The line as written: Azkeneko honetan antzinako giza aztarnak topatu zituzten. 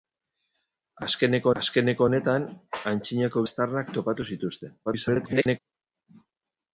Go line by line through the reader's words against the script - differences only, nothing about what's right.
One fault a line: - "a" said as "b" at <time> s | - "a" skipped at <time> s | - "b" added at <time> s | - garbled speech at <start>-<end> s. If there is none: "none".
- "azkeneko" added at 1.6 s
- "giza" skipped at 3.5 s
- garbled speech at 4.9-5.6 s